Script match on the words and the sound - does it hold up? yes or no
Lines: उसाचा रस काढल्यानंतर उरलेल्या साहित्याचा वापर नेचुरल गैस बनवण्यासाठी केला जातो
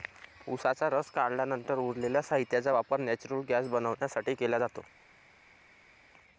yes